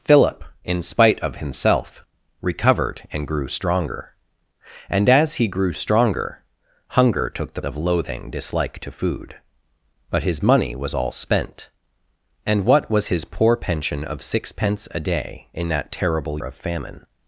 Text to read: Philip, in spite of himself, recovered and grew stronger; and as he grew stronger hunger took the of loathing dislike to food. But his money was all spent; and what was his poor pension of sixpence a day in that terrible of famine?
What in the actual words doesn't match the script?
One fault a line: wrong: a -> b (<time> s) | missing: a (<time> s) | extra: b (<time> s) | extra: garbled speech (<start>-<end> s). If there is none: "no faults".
no faults